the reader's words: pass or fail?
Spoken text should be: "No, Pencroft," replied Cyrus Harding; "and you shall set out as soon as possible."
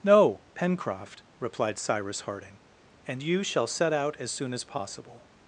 pass